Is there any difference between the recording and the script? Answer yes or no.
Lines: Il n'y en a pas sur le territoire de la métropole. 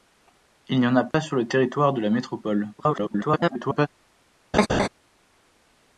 yes